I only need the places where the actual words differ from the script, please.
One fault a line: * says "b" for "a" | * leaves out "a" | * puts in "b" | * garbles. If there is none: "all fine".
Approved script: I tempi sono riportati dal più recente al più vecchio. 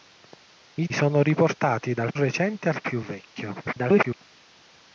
* leaves out "tempi"
* leaves out "più"
* garbles